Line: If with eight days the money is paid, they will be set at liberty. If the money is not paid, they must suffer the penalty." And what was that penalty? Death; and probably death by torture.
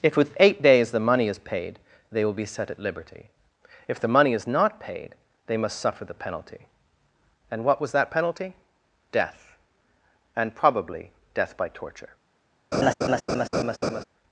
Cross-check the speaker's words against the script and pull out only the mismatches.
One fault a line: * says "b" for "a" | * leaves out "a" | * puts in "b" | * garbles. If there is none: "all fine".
all fine